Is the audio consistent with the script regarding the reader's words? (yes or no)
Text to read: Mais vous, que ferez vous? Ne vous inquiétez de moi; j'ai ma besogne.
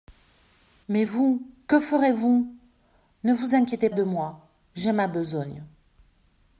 yes